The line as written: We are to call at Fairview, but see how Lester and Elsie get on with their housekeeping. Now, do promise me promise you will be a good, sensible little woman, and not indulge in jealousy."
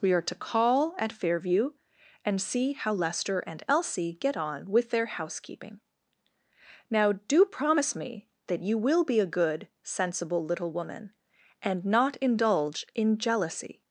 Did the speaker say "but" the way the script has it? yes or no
no